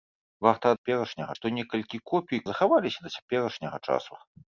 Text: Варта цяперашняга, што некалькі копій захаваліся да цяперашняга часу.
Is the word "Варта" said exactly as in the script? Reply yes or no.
yes